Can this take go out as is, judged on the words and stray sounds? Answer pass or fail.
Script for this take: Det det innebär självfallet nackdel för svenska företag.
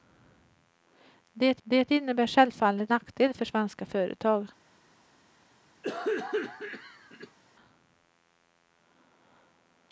fail